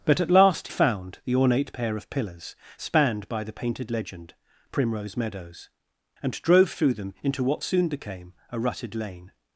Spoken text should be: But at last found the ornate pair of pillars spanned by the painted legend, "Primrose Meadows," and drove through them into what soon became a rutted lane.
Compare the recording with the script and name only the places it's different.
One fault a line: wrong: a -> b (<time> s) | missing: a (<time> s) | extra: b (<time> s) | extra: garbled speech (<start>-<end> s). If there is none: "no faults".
no faults